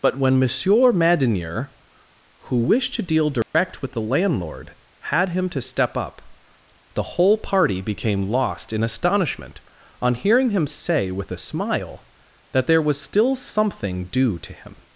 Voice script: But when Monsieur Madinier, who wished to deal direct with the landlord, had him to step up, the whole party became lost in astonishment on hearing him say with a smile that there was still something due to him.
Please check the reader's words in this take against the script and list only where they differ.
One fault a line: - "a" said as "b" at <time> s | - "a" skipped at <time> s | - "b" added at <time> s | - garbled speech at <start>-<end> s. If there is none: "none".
none